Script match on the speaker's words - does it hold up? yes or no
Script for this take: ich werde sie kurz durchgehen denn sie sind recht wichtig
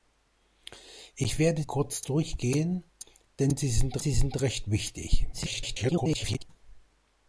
no